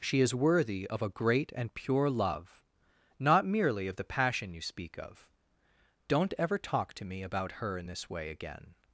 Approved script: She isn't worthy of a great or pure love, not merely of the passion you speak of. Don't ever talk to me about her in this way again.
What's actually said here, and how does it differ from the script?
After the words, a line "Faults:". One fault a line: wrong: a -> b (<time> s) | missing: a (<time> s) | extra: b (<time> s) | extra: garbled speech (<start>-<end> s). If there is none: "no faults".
She is worthy of a great and pure love, not merely of the passion you speak of. Don't ever talk to me about her in this way again.
Faults:
wrong: isn't -> is (0.2 s)
wrong: or -> and (1.6 s)